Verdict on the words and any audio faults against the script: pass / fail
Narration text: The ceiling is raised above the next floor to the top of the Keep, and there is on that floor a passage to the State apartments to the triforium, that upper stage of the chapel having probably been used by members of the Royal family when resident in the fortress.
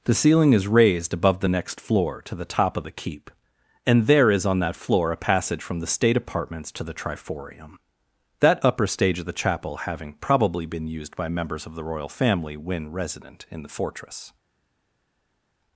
fail